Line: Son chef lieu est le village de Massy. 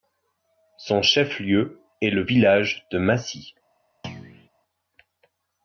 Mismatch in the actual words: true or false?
false